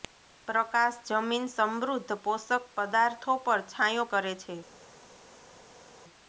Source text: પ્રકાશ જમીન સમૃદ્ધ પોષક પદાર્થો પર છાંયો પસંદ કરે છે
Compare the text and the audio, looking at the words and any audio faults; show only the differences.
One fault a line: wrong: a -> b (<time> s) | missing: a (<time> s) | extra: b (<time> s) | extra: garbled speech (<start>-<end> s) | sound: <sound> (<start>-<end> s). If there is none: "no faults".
missing: પસંદ (4.1 s)